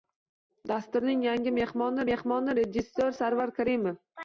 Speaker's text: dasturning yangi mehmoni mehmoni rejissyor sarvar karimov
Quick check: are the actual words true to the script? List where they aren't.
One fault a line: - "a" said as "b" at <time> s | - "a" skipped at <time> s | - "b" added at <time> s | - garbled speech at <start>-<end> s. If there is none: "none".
none